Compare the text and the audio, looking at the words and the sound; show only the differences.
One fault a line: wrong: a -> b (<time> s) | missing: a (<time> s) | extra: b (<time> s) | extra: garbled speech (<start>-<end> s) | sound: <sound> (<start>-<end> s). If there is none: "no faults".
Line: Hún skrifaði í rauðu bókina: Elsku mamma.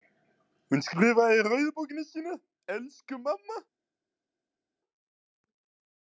extra: sína (2.1 s)